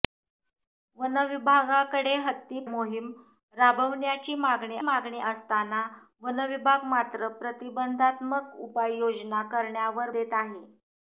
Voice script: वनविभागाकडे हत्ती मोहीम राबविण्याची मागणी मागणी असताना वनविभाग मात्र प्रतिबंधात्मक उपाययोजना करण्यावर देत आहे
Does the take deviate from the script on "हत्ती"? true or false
false